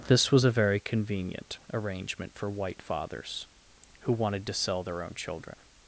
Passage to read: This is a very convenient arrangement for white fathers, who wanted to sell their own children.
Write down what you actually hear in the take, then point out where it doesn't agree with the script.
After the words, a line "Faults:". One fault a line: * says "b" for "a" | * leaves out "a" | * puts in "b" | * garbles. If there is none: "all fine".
This was a very convenient arrangement for white fathers, who wanted to sell their own children.
Faults:
* says "was" for "is"